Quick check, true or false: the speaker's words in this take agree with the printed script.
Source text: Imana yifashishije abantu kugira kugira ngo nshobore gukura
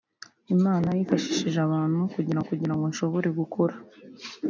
true